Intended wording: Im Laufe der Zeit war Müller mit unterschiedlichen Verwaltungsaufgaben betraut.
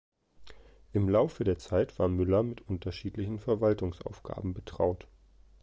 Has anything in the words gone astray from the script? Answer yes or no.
no